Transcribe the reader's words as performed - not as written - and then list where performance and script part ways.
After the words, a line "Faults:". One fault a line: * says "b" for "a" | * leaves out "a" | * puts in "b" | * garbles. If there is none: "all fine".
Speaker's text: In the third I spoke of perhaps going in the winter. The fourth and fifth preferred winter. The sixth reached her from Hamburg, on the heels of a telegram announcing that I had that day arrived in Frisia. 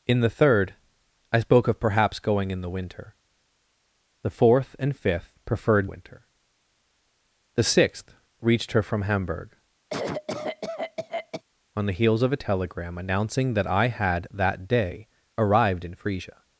In the third I spoke of perhaps going in the winter. The fourth and fifth preferred winter. The sixth reached her from Hamburg, on the heels of a telegram announcing that I had that day arrived in Frisia.
Faults:
all fine